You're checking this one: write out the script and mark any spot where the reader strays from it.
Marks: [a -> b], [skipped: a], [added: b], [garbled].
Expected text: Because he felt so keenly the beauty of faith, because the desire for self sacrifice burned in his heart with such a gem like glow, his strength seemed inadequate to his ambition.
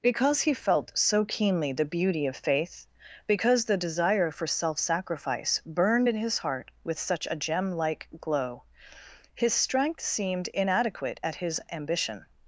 Because he felt so keenly the beauty of faith, because the desire for self sacrifice burned in his heart with such a gem like glow, his strength seemed inadequate [to -> at] his ambition.